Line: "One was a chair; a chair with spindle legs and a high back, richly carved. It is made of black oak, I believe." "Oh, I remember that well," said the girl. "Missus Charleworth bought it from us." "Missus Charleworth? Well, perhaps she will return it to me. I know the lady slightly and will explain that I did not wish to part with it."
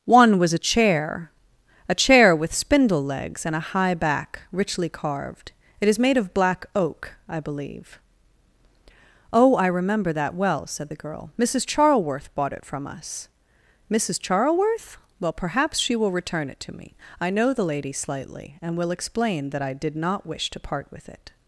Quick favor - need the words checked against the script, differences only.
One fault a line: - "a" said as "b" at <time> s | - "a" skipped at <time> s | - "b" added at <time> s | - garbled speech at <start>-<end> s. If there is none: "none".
none